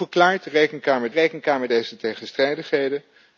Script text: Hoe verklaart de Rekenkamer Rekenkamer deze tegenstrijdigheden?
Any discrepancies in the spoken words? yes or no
no